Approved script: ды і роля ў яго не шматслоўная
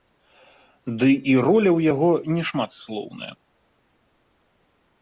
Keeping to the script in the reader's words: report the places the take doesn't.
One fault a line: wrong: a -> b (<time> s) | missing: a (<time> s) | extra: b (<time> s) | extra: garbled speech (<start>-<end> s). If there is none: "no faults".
no faults